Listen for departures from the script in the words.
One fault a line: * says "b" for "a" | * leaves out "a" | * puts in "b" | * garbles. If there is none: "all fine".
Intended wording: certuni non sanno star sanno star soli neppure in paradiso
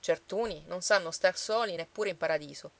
* leaves out "sanno star"